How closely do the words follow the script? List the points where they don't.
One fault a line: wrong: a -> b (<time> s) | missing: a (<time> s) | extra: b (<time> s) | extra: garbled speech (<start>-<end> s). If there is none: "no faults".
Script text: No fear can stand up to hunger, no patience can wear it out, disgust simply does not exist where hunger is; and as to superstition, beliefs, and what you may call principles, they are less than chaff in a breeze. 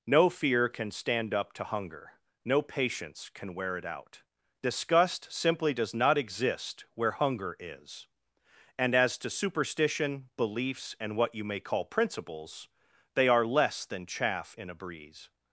no faults